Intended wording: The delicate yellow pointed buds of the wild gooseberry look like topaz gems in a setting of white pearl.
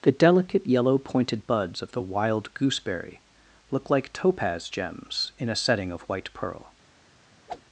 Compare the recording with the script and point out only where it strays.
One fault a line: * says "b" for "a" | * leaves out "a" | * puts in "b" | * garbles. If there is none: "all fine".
all fine